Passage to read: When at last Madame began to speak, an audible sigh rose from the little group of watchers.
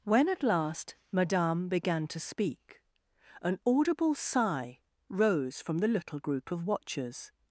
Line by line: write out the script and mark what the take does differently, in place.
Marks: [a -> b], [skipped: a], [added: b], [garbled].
When at last Madame began to speak, an audible sigh rose from the little group of watchers.